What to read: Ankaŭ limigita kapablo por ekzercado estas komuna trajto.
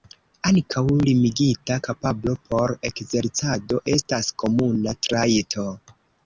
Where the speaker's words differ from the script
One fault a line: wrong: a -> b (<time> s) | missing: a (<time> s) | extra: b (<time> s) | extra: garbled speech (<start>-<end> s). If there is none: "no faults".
no faults